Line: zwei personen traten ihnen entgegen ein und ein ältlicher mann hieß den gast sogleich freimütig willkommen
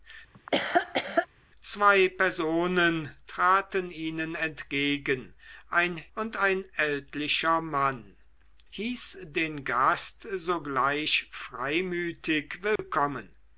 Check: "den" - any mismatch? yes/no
no